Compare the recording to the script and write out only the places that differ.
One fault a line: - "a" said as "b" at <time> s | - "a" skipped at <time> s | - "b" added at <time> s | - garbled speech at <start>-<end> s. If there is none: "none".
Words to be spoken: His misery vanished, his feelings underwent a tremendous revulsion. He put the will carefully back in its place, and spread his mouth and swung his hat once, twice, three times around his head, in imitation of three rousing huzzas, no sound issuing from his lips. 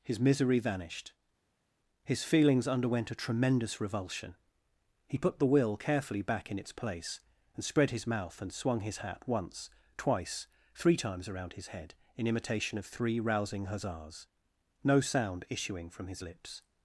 none